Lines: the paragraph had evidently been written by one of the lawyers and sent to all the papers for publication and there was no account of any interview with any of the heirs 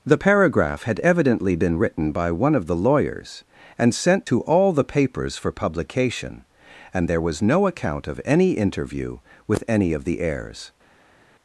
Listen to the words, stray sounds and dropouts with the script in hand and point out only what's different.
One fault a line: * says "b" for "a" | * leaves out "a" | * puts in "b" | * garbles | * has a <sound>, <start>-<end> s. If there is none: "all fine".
all fine